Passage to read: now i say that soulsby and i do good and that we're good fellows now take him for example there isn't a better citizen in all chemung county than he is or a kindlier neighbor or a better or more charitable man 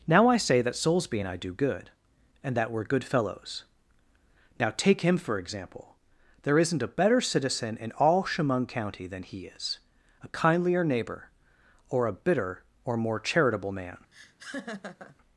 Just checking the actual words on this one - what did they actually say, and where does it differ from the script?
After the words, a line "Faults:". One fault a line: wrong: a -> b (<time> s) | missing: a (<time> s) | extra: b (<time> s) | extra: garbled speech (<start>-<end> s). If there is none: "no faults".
now i say that soulsby and i do good and that we're good fellows now take him for example there isn't a better citizen in all chemung county than he is a kindlier neighbor or a bitter or more charitable man
Faults:
missing: or (9.8 s)
wrong: better -> bitter (12.1 s)